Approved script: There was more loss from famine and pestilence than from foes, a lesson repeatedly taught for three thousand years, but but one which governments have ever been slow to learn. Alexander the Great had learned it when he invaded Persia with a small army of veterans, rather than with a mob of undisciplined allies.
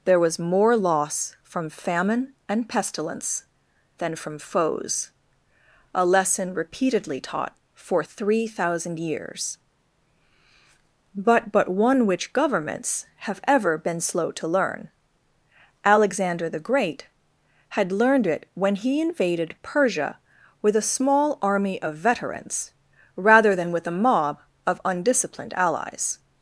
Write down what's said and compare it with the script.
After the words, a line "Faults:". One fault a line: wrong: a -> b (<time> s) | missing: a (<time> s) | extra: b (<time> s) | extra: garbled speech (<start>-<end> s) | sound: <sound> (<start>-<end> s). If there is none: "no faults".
There was more loss from famine and pestilence than from foes, a lesson repeatedly taught for three thousand years, but but one which governments have ever been slow to learn. Alexander the Great had learned it when he invaded Persia with a small army of veterans, rather than with a mob of undisciplined allies.
Faults:
no faults